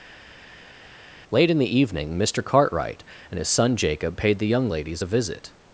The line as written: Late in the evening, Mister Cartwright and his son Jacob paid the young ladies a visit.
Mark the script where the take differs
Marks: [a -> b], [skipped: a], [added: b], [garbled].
Late in the evening, Mister Cartwright and his son Jacob paid the young ladies a visit.